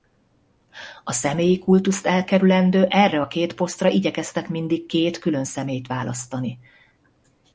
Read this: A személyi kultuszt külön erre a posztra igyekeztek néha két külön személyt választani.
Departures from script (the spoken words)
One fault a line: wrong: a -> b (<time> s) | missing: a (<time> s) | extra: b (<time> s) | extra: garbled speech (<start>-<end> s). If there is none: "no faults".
wrong: külön -> elkerülendő (2.0 s)
extra: két (3.3 s)
wrong: néha -> mindig (4.5 s)